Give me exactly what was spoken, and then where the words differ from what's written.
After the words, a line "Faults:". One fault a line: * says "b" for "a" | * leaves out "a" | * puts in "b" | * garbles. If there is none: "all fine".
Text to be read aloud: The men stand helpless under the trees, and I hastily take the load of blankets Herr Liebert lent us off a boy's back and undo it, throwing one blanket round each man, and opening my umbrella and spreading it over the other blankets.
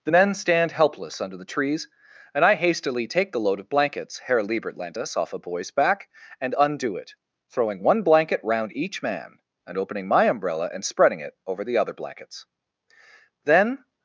The men stand helpless under the trees, and I hastily take the load of blankets Herr Liebert lent us off a boy's back and undo it, throwing one blanket round each man, and opening my umbrella and spreading it over the other blankets. Then
Faults:
* puts in "Then"